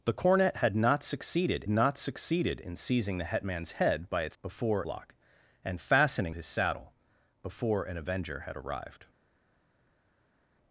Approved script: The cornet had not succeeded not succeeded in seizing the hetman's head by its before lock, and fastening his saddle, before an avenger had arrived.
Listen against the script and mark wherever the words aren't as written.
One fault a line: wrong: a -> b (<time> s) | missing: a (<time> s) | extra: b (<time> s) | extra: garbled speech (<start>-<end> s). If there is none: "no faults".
no faults